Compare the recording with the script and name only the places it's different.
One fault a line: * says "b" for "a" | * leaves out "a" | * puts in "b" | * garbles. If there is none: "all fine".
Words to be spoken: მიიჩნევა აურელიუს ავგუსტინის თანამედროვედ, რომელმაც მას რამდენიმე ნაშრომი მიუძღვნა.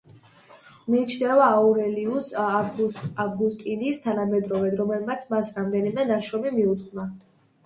all fine